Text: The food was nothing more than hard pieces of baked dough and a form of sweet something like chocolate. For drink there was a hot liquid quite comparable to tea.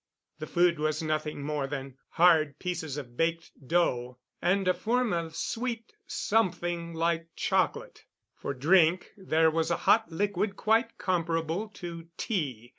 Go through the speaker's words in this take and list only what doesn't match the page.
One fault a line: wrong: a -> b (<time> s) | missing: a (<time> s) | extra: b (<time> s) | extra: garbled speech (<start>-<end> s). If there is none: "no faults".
no faults